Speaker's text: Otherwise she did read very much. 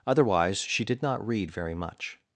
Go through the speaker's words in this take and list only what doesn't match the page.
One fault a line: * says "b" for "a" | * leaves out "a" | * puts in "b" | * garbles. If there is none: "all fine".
* puts in "not"